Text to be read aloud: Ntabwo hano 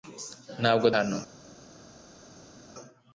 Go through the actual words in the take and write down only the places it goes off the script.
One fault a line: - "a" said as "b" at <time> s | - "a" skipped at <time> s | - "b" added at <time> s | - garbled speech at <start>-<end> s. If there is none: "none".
none